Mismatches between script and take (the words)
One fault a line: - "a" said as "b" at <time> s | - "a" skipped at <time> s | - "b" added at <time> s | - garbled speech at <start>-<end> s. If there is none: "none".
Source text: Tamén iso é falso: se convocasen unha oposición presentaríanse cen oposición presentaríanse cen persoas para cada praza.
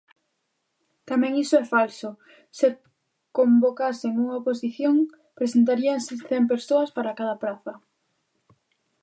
- "oposición presentaríanse cen" skipped at 6.4 s